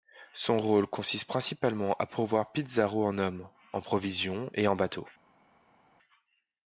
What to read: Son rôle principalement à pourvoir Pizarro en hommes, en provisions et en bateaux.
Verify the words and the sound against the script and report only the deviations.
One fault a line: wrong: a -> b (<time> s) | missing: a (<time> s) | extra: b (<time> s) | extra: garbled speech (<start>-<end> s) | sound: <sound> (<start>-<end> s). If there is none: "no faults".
extra: consiste (0.9 s)